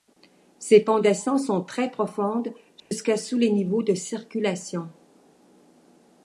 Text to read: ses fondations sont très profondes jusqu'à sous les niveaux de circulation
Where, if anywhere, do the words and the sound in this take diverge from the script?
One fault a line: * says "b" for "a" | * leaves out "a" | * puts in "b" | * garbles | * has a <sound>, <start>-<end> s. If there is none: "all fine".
* has a dropout, 2.8-2.9 s